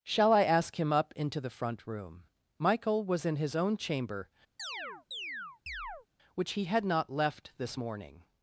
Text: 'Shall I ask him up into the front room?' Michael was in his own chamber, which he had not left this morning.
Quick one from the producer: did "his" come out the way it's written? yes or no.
yes